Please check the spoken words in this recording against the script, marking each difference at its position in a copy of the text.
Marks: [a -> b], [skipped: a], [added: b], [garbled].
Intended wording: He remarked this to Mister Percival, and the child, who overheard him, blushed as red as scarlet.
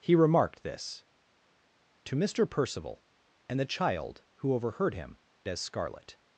He remarked this to Mister Percival, and the child, who overheard him, [skipped: blushed as red] as scarlet.